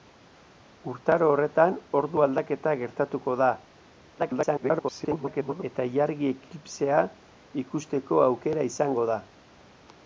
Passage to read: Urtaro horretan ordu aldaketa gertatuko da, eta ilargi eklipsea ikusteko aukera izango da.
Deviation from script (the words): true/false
true